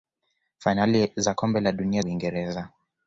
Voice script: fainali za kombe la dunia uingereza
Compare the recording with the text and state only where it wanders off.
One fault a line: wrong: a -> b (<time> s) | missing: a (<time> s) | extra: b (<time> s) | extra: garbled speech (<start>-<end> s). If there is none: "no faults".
no faults